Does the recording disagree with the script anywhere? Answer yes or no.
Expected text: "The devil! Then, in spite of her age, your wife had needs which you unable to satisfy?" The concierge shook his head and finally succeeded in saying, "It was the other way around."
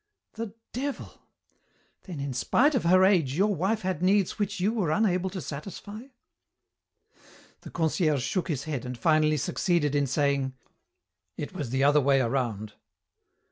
yes